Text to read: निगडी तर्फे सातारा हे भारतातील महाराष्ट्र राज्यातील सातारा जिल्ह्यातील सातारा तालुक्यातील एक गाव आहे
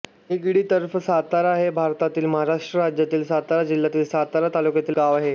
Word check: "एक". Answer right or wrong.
wrong